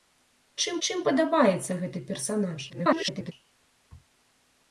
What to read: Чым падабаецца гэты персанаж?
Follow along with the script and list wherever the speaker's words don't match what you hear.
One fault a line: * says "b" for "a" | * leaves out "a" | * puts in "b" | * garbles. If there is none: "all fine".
* puts in "чым"
* garbles